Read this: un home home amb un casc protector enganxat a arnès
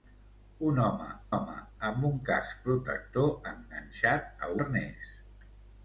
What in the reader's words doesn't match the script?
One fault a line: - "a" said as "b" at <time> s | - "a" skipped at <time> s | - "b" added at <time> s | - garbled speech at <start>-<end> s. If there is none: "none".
none